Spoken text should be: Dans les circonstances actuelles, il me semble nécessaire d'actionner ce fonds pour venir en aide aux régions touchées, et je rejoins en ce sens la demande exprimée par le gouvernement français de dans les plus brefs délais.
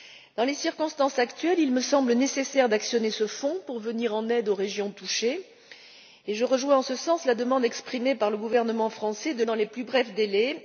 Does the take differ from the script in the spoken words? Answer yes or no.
no